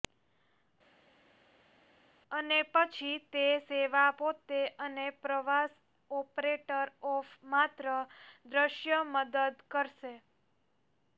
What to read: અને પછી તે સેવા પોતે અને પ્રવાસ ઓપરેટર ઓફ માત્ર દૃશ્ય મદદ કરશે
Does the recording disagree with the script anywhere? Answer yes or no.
no